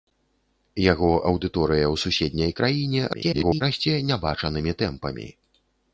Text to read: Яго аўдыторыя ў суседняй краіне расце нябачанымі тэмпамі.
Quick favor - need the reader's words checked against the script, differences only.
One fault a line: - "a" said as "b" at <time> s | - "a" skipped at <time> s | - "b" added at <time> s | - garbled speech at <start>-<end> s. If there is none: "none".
- garbled speech at 3.1-3.6 s